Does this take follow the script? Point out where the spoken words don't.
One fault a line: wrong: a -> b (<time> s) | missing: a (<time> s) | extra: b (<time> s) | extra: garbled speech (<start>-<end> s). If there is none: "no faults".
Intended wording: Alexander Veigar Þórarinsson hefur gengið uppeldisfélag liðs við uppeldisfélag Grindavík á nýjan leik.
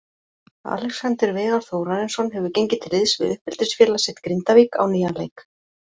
wrong: uppeldisfélag -> til (2.8 s)
extra: sitt (4.1 s)